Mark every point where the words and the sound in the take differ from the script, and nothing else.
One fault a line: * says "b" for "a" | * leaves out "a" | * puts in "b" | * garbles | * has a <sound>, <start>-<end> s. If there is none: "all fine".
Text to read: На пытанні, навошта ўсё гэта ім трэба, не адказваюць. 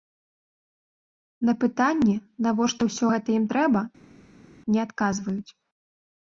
all fine